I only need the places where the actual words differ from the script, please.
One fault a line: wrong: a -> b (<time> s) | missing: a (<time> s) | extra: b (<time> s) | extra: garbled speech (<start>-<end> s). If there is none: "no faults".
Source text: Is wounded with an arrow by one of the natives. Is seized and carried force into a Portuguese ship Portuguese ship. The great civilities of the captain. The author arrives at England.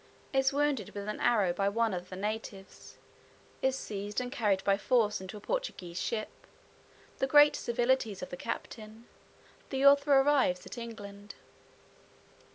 extra: by (4.6 s)
missing: Portuguese ship (6.5 s)